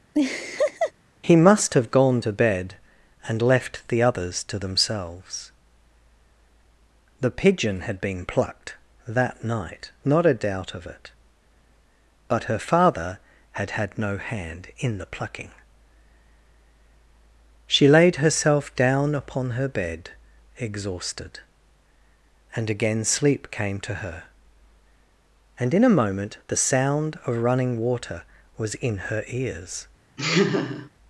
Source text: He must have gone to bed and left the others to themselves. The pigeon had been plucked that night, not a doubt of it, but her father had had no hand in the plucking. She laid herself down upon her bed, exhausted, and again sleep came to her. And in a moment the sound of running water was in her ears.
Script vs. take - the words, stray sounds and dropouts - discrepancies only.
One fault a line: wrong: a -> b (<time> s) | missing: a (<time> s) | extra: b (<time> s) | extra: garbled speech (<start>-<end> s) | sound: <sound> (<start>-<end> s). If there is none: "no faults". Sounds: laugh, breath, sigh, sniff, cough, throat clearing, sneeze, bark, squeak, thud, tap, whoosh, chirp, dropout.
sound: laugh (0.1-0.9 s)
sound: laugh (30.2-30.9 s)